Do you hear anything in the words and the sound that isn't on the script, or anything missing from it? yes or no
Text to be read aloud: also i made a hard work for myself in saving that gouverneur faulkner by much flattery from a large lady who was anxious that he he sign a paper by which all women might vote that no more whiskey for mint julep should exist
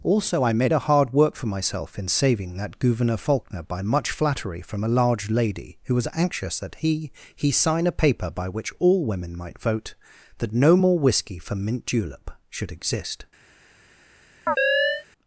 yes